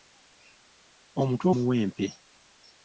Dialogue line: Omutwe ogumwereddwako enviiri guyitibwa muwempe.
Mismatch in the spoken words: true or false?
true